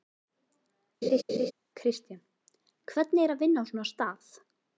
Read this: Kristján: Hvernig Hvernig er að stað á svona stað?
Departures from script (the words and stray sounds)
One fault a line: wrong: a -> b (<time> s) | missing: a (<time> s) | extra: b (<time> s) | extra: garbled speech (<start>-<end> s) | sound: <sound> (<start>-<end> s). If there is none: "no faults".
sound: laugh (1.0-1.5 s)
missing: Hvernig (3.2 s)
wrong: stað -> vinna (3.5 s)